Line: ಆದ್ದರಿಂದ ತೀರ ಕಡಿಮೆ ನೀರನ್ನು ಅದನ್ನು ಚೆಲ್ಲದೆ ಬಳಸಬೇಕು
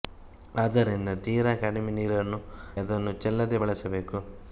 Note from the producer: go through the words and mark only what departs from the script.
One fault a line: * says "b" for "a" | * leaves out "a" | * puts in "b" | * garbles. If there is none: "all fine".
all fine